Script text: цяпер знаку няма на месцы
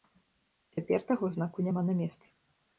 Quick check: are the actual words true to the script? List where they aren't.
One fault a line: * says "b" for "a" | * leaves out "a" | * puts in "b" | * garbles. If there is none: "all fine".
* puts in "таго"